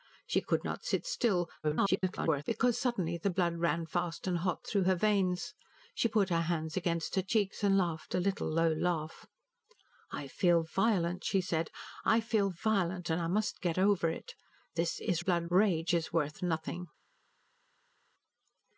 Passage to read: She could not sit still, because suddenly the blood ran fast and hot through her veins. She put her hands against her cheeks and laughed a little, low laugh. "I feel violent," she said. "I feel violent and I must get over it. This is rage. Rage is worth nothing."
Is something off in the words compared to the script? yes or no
yes